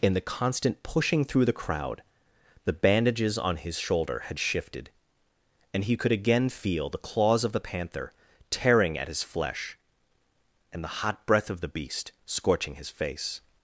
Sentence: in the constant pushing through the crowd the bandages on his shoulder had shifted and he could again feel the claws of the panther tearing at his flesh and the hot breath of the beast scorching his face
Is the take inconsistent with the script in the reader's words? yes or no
no